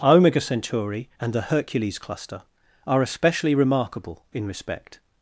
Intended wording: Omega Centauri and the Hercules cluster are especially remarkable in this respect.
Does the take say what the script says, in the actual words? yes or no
no